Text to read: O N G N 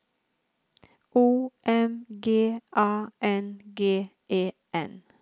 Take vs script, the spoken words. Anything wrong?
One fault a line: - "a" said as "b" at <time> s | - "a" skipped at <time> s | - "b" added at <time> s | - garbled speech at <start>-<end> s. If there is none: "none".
- "M G A" added at 1.6 s
- "E" added at 4.3 s